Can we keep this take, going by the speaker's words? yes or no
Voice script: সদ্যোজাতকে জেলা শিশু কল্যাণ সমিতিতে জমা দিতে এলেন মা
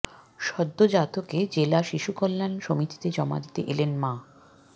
yes